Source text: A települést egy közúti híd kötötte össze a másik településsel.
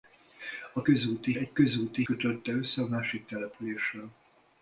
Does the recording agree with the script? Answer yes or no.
no